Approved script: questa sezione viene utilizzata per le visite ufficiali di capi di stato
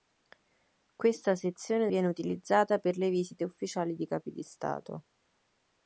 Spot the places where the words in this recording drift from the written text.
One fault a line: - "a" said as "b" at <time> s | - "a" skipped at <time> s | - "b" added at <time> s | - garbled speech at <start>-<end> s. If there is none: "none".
none